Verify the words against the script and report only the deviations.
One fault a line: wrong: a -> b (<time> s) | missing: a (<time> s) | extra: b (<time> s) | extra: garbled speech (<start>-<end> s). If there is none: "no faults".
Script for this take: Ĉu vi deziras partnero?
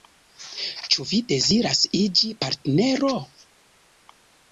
extra: iĝi (2.0 s)